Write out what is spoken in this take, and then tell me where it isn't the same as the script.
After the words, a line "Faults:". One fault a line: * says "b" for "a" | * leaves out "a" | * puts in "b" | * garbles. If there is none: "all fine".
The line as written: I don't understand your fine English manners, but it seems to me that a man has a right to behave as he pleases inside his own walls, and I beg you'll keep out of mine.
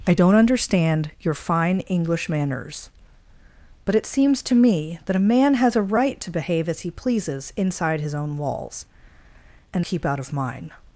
I don't understand your fine English manners, but it seems to me that a man has a right to behave as he pleases inside his own walls, and keep out of mine.
Faults:
* leaves out "I beg you'll"